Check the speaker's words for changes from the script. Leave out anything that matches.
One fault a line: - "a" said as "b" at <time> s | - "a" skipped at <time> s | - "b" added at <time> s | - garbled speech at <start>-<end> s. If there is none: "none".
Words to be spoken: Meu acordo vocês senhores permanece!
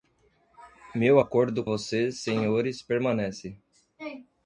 none